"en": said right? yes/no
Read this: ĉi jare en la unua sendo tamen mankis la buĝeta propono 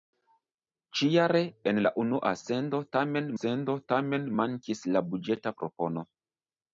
yes